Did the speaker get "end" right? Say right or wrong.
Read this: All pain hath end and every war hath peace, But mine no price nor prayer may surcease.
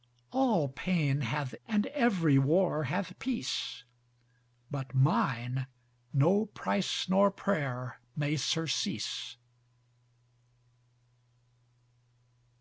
wrong